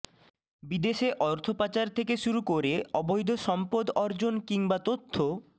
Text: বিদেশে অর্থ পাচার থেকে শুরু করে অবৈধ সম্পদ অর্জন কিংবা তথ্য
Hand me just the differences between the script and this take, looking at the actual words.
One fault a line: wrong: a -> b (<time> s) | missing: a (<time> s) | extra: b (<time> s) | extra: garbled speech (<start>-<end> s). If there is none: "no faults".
no faults